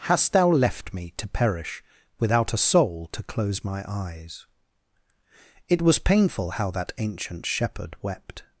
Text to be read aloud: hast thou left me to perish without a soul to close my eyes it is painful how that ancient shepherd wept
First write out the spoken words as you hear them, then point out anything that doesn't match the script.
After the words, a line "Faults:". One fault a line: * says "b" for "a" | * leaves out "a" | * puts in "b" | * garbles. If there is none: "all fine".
hast thou left me to perish without a soul to close my eyes it was painful how that ancient shepherd wept
Faults:
* says "was" for "is"